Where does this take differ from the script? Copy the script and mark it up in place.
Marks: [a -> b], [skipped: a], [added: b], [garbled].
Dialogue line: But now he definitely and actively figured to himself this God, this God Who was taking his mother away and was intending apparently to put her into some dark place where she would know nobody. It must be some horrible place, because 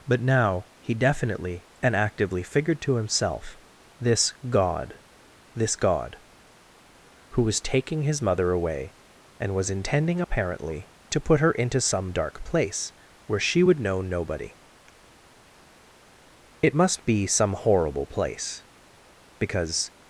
But now he definitely and actively figured to himself this God, this God Who was taking his mother away and was intending apparently to put her into some dark place where she would know nobody. It must be some horrible place, because